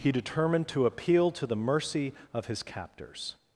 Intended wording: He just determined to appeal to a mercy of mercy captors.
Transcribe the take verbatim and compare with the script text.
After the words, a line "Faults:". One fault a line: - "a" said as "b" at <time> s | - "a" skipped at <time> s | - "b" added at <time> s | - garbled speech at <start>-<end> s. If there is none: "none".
He determined to appeal to the mercy of his captors.
Faults:
- "just" skipped at 0.1 s
- "a" said as "the" at 1.4 s
- "mercy" said as "his" at 2.5 s